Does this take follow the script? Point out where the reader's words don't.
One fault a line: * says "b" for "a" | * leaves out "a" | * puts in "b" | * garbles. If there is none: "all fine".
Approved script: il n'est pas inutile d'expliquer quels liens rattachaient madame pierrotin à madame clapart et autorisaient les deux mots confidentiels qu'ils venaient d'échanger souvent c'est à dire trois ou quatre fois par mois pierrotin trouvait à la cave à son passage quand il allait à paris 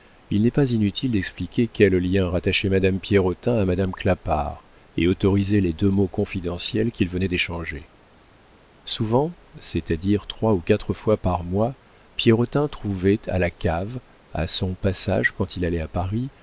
all fine